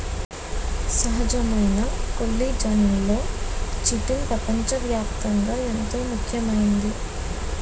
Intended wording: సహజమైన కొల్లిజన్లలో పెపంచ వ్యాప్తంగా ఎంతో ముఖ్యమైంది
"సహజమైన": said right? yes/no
yes